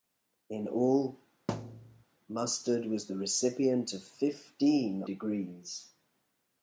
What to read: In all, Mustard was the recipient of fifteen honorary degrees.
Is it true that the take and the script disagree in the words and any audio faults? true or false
true